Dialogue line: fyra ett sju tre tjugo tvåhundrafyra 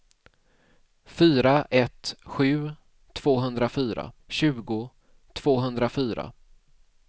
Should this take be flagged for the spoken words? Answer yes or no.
yes